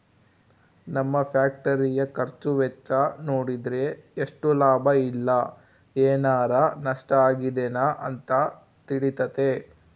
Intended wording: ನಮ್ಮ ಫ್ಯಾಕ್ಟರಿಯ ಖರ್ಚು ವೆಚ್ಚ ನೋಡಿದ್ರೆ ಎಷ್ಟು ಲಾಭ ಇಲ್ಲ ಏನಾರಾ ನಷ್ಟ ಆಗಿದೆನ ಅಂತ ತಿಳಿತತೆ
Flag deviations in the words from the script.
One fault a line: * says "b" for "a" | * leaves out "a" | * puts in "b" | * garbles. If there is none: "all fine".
all fine